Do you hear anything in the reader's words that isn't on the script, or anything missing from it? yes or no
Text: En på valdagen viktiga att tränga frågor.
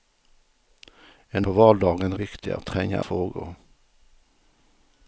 no